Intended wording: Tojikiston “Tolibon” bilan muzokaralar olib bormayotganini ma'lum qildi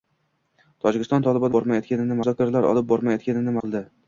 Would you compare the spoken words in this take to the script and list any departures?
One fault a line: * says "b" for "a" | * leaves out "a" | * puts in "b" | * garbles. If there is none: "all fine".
* says "bormayotganini" for "bilan"
* leaves out "ma'lum"